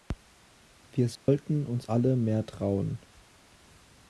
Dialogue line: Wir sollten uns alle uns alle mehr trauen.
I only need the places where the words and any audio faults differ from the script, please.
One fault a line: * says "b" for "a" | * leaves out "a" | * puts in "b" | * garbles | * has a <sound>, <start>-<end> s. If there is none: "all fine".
* has a dropout, 1.2-1.3 s
* leaves out "uns alle"